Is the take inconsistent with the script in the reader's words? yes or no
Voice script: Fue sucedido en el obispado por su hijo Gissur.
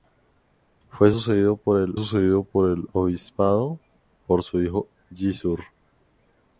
yes